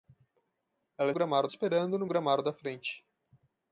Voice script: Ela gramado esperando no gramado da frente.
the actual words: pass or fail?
pass